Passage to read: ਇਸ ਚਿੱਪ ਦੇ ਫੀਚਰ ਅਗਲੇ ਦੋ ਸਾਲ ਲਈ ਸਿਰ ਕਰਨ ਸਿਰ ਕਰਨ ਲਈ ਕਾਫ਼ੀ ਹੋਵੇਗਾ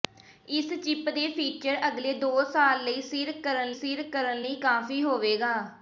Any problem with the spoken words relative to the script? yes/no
no